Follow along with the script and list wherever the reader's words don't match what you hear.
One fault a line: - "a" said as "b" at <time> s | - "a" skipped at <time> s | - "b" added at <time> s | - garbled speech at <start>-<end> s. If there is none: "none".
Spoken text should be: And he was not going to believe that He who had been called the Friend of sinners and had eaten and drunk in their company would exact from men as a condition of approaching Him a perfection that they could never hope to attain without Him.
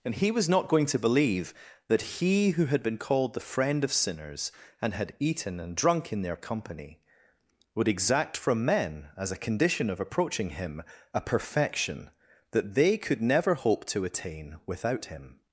none